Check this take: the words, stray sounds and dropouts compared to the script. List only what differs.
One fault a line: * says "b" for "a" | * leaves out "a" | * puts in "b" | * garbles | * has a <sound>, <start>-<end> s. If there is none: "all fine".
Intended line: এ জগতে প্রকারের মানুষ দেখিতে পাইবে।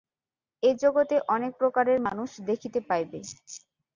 * puts in "অনেক"